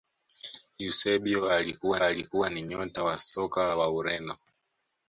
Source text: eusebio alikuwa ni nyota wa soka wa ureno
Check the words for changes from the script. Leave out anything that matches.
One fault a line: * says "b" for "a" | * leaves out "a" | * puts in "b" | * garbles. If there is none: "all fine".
* puts in "alikuwa"